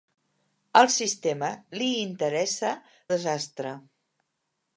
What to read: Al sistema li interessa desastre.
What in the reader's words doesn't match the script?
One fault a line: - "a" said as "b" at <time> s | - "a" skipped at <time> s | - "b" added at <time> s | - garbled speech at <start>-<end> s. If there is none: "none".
none